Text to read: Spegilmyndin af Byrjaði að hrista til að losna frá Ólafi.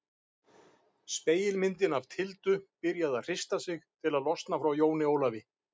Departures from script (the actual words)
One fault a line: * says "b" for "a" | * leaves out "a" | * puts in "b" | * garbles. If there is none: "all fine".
* puts in "Tildu"
* puts in "sig"
* puts in "Jóni"